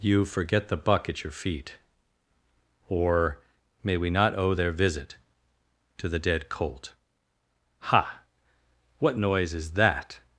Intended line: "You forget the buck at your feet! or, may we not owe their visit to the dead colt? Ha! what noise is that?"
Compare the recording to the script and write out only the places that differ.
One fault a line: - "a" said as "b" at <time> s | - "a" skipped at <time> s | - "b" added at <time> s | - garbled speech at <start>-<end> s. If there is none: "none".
none